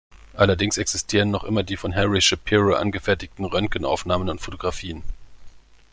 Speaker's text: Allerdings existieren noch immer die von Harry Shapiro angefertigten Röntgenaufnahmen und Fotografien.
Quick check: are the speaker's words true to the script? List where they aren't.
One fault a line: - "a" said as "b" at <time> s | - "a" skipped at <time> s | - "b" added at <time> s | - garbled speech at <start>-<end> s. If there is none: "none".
none